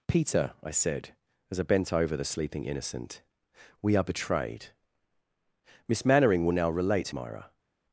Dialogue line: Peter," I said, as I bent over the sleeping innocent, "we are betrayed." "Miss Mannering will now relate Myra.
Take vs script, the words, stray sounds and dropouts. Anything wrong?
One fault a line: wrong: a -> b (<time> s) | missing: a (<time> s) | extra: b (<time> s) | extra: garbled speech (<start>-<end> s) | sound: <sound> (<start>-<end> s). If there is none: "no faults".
no faults